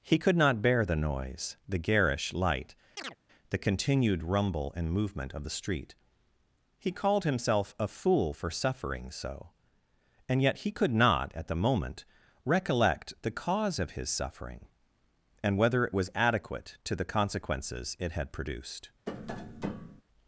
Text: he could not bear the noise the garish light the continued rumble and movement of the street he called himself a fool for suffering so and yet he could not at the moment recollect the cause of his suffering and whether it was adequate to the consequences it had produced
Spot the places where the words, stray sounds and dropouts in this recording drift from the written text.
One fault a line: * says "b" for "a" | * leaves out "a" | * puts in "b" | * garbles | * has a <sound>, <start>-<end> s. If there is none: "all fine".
* has a chirp, 3.0-3.2 s
* has a tap, 19.1-20.0 s